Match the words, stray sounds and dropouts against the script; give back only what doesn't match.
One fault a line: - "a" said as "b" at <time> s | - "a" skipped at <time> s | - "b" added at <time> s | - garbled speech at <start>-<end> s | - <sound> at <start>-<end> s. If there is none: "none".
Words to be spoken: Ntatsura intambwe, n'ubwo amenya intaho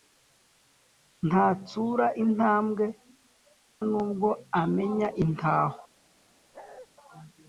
- bark at 6.5-6.9 s